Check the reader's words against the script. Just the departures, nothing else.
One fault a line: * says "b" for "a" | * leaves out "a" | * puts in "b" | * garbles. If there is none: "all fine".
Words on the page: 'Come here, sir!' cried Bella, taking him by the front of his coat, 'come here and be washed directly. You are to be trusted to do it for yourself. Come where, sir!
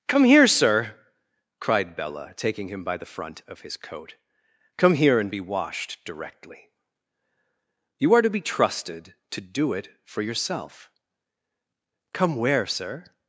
all fine